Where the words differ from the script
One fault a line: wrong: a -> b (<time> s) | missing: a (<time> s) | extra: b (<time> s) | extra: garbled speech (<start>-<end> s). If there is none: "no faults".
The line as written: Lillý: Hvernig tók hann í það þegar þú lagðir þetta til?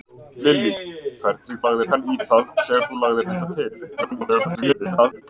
wrong: tók -> lagðir (1.7 s)
extra: garbled speech (4.0-5.2 s)